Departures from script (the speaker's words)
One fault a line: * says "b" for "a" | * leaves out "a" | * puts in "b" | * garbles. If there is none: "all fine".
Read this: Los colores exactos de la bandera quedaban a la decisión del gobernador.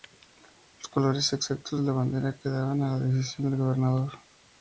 all fine